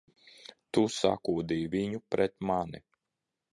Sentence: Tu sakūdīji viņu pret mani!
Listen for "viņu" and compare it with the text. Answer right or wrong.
right